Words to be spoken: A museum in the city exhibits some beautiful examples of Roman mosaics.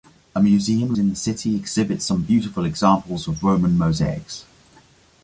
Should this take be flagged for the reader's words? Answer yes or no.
no